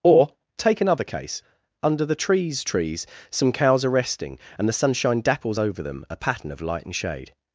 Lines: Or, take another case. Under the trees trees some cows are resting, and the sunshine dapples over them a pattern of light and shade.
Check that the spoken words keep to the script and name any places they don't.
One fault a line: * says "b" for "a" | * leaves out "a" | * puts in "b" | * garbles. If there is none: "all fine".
all fine